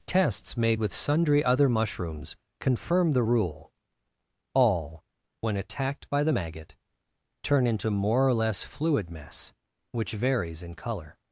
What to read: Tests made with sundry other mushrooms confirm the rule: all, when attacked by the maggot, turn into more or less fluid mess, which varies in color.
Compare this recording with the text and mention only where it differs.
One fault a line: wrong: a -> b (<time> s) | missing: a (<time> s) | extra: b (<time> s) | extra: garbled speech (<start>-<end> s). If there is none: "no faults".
no faults